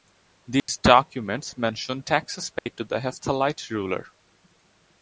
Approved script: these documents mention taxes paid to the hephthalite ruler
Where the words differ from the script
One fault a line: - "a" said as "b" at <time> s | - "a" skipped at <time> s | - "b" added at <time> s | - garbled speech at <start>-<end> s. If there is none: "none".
none